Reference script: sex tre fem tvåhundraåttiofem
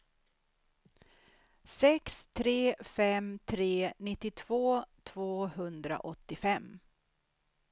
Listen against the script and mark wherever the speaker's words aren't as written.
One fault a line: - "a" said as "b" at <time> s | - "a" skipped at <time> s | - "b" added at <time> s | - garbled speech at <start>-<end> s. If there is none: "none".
- "tre nittiotvå" added at 3.5 s